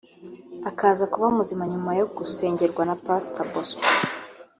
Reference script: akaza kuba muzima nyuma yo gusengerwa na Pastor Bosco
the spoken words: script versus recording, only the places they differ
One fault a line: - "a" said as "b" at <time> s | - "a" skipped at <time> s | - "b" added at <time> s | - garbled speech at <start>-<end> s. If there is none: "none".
none